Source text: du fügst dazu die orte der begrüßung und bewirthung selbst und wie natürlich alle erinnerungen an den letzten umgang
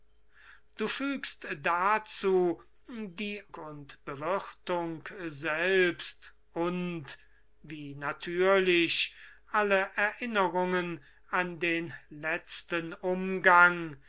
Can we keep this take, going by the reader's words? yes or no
no